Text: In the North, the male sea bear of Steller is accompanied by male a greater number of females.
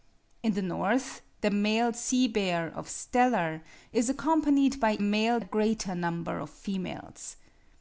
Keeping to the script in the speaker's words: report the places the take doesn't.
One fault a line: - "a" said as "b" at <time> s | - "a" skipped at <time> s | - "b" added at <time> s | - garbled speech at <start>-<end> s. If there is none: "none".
none